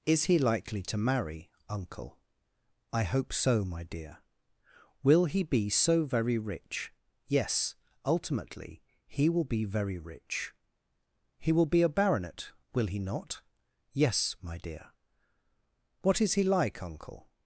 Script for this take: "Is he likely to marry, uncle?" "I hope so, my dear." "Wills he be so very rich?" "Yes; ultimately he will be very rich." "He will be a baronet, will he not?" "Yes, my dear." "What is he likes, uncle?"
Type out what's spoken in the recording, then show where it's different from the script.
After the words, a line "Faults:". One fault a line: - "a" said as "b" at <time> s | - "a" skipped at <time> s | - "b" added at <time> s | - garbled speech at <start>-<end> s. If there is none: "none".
"Is he likely to marry, uncle?" "I hope so, my dear." "Will he be so very rich?" "Yes; ultimately he will be very rich." "He will be a baronet, will he not?" "Yes, my dear." "What is he like, uncle?"
Faults:
- "Wills" said as "Will" at 5.0 s
- "likes" said as "like" at 16.4 s